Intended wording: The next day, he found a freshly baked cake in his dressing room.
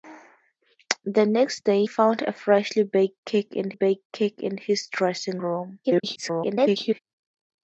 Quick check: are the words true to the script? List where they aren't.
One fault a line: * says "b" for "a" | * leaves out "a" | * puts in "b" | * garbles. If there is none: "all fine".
* leaves out "he"
* puts in "baked cake in"
* garbles